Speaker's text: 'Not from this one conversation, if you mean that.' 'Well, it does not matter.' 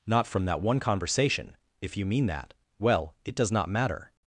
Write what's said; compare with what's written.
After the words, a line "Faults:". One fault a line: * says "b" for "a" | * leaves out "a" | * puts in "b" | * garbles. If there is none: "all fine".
'Not from that one conversation, if you mean that.' 'Well, it does not matter.'
Faults:
* says "that" for "this"